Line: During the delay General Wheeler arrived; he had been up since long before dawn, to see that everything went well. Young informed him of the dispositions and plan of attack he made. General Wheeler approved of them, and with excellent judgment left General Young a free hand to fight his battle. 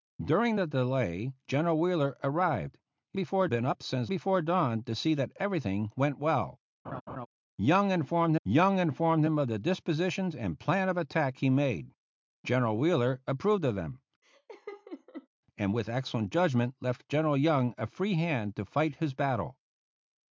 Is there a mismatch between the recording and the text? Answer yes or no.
yes